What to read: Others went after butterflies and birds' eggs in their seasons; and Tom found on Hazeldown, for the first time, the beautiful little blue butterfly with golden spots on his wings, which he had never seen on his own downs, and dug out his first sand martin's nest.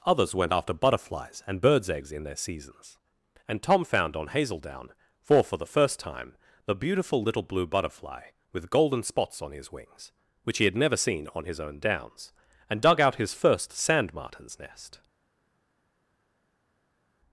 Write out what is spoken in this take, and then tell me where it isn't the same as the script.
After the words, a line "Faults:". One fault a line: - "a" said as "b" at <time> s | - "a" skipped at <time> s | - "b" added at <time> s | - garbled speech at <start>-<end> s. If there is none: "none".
Others went after butterflies and birds' eggs in their seasons; and Tom found on Hazeldown, for for the first time, the beautiful little blue butterfly with golden spots on his wings, which he had never seen on his own downs, and dug out his first sand martin's nest.
Faults:
- "for" added at 5.4 s